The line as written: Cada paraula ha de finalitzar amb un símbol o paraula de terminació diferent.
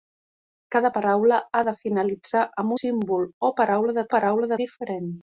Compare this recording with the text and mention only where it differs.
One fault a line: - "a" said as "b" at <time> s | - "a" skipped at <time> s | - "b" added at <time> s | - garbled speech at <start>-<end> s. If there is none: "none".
- "un" skipped at 2.8 s
- "terminació" said as "paraula" at 4.2 s